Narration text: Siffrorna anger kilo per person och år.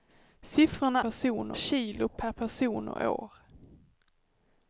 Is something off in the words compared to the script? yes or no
yes